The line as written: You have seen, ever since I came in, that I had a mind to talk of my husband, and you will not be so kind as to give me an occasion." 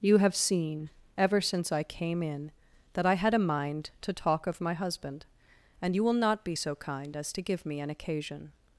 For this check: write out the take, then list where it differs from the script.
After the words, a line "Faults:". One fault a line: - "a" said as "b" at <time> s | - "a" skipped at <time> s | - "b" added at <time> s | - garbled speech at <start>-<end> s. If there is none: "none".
You have seen, ever since I came in, that I had a mind to talk of my husband, and you will not be so kind as to give me an occasion."
Faults:
none